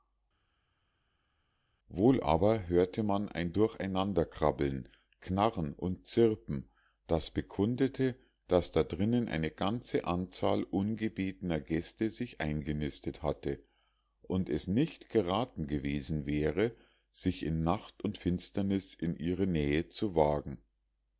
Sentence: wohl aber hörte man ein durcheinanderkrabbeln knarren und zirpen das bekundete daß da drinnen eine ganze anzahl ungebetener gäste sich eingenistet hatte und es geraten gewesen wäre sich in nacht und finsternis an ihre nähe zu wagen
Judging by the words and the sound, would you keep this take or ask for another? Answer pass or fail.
fail